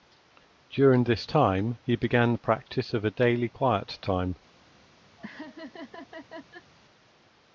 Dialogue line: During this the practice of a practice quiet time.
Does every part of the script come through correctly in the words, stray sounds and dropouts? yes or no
no